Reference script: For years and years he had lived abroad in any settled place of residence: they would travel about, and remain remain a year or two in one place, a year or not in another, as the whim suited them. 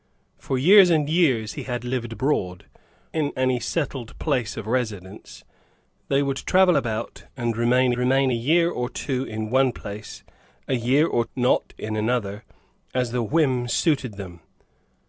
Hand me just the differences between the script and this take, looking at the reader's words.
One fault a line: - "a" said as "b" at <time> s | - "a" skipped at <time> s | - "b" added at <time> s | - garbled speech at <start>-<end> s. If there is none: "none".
none